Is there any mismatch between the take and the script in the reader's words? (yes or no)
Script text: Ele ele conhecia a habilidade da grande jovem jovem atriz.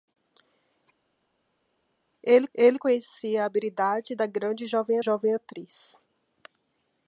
no